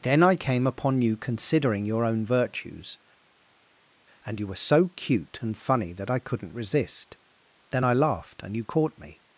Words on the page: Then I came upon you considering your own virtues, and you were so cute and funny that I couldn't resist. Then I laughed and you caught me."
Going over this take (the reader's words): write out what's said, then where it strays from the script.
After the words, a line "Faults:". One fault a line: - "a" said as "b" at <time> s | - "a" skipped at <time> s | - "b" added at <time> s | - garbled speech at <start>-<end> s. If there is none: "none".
Then I came upon you considering your own virtues, and you were so cute and funny that I couldn't resist. Then I laughed and you caught me."
Faults:
none